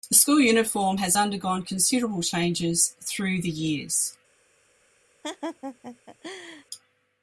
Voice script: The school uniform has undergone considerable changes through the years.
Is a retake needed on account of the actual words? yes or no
no